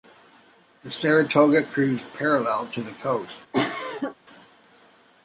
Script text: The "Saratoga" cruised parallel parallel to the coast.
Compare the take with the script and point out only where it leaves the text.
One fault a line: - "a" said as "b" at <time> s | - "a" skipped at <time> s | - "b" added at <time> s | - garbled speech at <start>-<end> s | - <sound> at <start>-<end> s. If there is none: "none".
- "parallel" skipped at 2.7 s
- cough at 3.5-4.1 s